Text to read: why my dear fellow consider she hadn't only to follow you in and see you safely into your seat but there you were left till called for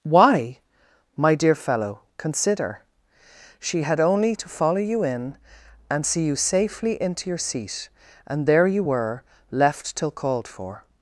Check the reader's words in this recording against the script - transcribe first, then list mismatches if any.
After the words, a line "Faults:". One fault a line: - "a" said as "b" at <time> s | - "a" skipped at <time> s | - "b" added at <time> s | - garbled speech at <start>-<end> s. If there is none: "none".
why my dear fellow consider she had only to follow you in and see you safely into your seat and there you were left till called for
Faults:
- "hadn't" said as "had" at 3.8 s
- "but" said as "and" at 8.3 s